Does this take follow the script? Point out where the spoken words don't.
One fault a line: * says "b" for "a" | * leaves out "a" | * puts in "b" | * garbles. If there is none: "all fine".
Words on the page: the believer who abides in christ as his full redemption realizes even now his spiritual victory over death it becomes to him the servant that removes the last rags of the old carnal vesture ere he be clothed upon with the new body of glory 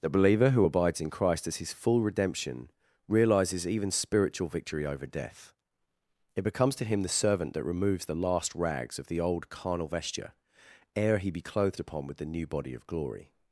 * leaves out "now his"